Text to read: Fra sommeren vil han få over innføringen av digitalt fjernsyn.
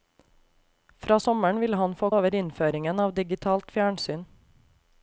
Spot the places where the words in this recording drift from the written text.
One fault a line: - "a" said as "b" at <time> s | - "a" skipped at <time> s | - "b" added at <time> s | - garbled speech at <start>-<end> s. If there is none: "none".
none